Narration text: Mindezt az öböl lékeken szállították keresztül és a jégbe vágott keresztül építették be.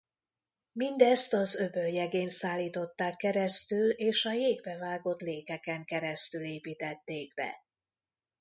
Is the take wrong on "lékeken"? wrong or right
wrong